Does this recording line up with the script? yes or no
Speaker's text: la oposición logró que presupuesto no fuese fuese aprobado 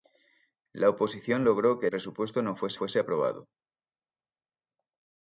yes